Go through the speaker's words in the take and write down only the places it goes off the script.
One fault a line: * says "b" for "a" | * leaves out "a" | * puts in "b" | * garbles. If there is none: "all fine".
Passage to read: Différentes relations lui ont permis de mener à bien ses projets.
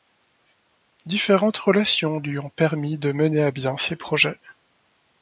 all fine